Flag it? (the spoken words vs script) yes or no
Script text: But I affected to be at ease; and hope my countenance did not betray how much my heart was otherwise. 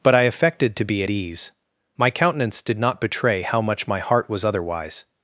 yes